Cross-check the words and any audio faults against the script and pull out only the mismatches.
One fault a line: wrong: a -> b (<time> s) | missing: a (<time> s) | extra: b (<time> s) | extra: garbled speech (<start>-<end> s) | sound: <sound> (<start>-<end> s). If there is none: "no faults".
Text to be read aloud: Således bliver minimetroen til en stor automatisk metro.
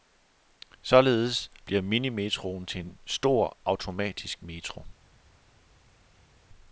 no faults